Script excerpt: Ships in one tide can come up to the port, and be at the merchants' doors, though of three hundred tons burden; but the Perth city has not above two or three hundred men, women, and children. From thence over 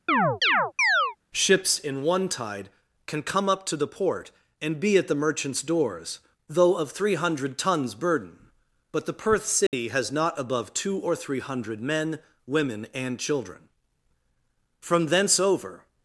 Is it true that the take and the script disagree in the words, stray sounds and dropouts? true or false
true